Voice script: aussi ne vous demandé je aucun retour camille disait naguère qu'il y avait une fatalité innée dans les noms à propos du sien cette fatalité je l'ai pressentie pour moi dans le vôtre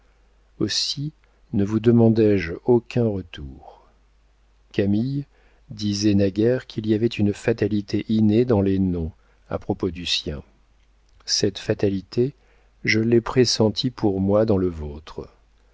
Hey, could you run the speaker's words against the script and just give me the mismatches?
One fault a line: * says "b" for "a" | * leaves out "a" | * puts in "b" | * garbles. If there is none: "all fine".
all fine